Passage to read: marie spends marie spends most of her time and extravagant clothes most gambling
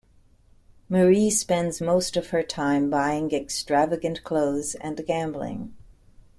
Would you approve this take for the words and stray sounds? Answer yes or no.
no